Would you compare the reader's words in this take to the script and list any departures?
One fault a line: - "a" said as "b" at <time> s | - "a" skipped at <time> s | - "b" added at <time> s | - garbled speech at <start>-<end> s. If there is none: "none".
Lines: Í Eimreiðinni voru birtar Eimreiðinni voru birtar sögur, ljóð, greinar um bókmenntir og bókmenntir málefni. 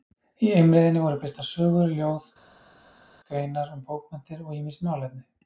- "Eimreiðinni voru birtar" skipped at 1.5 s
- "bókmenntir" said as "ýmis" at 4.6 s